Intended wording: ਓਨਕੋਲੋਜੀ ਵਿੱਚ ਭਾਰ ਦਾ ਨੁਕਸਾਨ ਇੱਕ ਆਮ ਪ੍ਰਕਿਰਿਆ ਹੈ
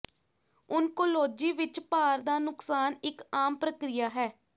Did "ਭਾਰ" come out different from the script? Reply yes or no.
no